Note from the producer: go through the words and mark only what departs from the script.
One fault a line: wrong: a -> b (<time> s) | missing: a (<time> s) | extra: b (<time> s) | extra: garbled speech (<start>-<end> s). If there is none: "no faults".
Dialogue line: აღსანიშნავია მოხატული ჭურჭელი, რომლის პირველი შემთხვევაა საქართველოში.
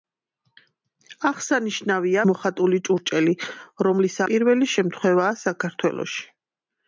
no faults